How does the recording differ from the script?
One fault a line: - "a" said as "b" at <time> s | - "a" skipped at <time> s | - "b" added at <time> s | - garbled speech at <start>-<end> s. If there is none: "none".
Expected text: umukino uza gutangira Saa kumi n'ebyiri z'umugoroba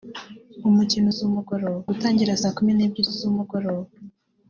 - "uza" said as "z'umugoroba" at 1.2 s